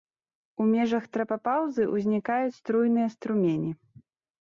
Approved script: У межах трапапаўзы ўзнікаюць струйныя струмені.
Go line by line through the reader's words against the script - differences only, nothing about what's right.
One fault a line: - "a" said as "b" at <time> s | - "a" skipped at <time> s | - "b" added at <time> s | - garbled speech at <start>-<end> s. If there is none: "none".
none